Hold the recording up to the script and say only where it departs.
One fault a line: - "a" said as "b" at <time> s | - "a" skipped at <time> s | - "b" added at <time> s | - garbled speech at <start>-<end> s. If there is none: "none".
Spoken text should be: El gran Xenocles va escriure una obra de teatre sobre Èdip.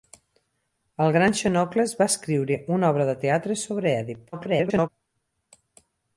- garbled speech at 4.3-4.9 s